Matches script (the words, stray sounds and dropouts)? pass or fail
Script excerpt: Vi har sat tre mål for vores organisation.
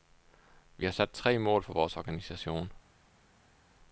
pass